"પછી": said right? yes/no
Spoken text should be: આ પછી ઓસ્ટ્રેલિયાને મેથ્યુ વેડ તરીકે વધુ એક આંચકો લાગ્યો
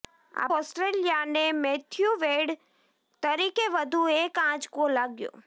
no